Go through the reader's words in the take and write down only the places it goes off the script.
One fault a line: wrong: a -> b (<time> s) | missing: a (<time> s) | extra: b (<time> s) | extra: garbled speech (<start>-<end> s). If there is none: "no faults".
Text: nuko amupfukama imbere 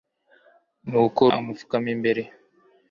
no faults